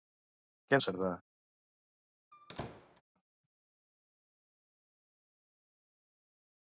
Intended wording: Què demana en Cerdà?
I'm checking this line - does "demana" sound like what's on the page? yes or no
no